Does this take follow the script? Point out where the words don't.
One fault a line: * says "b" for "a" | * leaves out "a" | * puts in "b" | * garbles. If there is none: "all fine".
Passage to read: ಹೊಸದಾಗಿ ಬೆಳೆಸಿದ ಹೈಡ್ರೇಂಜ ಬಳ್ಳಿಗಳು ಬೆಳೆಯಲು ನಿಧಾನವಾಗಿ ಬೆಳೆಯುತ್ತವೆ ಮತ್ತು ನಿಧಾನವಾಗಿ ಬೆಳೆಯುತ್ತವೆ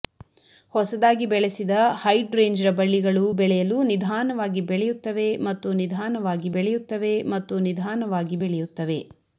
* puts in "ಮತ್ತು ನಿಧಾನವಾಗಿ ಬೆಳೆಯುತ್ತವೆ"